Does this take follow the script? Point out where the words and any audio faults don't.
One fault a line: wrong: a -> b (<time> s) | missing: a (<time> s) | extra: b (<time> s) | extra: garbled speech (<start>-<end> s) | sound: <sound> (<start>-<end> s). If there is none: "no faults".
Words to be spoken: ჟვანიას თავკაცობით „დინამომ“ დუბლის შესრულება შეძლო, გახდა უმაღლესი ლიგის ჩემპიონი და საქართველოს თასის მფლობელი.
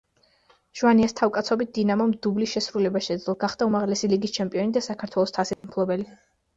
sound: dropout (5.5-5.6 s)